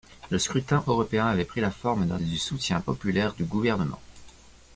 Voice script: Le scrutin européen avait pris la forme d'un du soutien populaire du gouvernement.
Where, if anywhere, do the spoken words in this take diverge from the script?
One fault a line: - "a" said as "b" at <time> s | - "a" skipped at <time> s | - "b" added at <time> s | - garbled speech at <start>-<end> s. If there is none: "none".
none